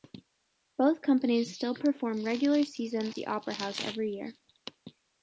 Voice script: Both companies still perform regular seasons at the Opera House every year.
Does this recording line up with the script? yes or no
no